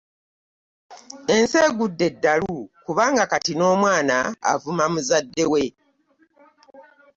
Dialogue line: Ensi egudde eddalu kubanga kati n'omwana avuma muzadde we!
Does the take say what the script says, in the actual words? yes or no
yes